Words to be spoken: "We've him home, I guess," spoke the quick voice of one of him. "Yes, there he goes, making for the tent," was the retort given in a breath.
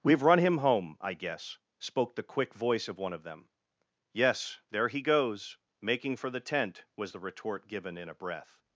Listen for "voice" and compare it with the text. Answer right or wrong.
right